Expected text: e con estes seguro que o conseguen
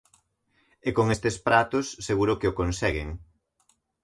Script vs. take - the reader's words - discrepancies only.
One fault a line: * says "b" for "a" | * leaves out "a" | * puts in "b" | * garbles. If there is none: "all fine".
* puts in "pratos"